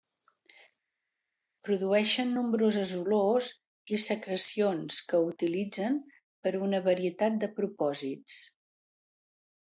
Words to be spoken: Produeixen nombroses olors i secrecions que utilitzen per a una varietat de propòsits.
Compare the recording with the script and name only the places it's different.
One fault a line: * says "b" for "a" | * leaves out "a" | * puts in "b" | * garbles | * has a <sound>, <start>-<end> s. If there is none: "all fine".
all fine